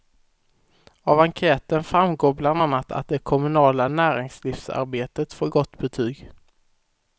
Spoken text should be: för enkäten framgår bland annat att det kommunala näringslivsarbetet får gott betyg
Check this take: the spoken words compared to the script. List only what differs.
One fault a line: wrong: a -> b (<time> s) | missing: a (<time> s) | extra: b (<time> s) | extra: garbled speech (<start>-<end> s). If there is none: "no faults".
wrong: för -> av (1.0 s)